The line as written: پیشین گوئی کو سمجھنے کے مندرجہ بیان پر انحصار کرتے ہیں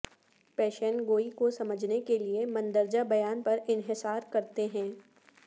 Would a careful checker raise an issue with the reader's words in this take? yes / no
yes